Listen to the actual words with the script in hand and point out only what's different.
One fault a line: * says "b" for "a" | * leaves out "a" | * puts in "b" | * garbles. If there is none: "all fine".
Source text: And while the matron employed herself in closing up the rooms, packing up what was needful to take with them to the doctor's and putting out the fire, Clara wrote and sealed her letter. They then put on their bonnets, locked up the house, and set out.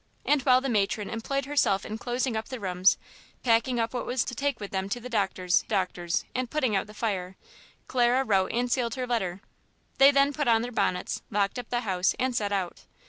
* leaves out "needful"
* puts in "doctor's"